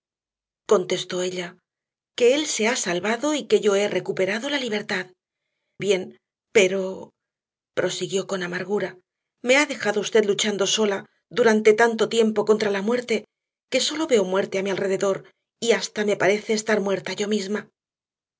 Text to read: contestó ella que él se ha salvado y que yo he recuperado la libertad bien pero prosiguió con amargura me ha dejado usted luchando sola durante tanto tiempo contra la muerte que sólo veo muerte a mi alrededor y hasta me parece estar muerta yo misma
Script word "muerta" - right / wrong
right